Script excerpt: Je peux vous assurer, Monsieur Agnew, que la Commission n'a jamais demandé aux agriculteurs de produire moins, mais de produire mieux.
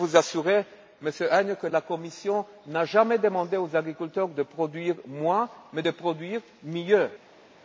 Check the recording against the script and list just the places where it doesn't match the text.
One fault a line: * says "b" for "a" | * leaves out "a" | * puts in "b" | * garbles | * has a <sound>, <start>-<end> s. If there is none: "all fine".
all fine